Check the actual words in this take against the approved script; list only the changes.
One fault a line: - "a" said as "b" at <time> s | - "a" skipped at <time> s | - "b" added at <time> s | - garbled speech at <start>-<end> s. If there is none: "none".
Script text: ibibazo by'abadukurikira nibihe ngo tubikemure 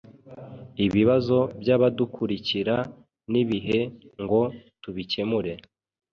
none